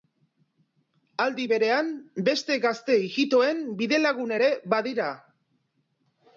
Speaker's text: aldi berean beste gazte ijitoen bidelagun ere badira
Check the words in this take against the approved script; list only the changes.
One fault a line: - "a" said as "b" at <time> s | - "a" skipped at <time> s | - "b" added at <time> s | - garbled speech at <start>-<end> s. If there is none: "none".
none